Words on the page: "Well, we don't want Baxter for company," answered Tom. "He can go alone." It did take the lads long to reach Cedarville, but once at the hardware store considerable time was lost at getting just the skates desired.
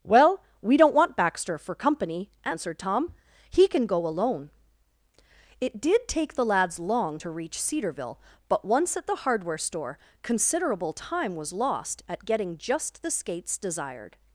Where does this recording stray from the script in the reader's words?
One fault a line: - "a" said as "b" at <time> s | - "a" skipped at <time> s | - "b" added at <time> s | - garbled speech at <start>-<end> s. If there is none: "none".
none